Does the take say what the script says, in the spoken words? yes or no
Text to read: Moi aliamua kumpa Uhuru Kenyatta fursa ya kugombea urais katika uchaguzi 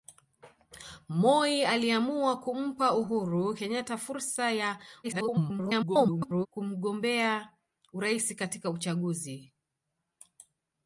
no